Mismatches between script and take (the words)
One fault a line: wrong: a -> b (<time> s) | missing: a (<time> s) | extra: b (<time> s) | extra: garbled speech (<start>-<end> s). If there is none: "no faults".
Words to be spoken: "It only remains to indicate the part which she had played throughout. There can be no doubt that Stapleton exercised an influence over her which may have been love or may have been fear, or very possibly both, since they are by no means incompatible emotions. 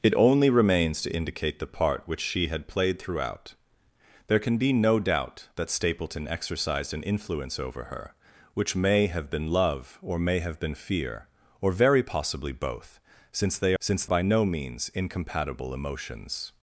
wrong: are -> since (13.8 s)